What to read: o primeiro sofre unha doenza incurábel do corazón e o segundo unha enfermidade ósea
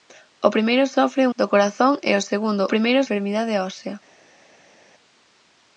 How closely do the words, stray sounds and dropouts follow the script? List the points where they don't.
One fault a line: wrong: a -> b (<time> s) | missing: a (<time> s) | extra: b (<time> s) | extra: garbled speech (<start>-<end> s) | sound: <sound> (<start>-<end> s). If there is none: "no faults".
missing: unha doenza incurábel (1.3 s)
wrong: unha -> primeiro (2.7 s)